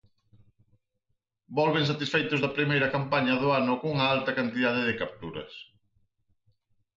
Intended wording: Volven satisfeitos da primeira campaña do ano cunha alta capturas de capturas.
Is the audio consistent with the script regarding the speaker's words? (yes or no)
no